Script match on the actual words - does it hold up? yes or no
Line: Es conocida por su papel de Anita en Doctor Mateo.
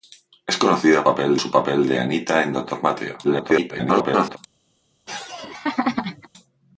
no